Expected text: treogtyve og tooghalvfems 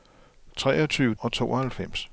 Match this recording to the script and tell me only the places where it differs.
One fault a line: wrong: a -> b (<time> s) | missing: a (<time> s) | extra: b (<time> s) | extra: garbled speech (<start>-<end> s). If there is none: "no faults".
no faults